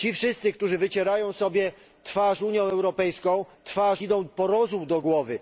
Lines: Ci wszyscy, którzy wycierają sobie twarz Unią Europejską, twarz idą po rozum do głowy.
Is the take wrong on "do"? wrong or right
right